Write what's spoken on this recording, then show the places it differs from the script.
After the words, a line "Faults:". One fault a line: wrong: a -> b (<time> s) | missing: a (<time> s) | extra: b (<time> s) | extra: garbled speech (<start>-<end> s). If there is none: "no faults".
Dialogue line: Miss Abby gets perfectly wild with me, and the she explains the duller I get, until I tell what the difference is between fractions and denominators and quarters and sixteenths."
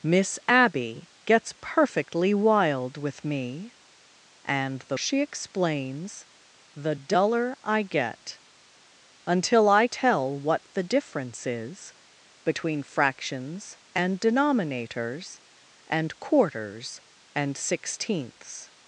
Miss Abby gets perfectly wild with me, and the she explains the duller I get, until I tell what the difference is between fractions and denominators and quarters and sixteenths."
Faults:
no faults